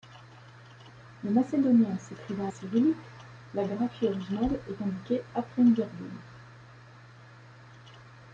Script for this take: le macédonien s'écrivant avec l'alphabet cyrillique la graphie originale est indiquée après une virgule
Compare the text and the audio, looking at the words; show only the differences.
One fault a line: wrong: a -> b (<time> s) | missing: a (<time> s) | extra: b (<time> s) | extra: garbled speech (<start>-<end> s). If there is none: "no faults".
missing: avec l'alphabet (2.5 s)